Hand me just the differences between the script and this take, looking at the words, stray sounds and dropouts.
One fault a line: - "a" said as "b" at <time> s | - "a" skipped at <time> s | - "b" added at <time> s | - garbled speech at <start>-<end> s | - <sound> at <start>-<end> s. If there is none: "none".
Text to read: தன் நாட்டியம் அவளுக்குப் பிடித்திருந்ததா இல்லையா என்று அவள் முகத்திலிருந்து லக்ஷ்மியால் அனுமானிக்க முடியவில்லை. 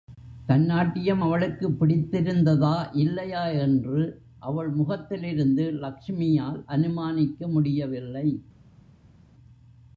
none